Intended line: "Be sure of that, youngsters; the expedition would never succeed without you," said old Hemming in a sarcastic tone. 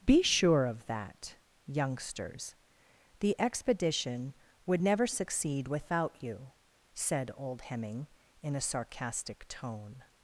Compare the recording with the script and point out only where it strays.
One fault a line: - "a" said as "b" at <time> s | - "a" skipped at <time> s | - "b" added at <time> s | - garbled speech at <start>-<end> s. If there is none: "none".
none